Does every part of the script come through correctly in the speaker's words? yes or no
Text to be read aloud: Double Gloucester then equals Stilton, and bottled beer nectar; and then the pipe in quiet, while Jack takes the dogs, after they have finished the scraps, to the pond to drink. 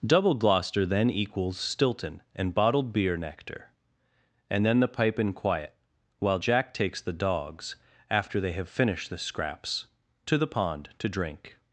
yes